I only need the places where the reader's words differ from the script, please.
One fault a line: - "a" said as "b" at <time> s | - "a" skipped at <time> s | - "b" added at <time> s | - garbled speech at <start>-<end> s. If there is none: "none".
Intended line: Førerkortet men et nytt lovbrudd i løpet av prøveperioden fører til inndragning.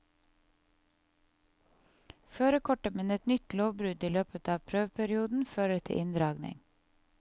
none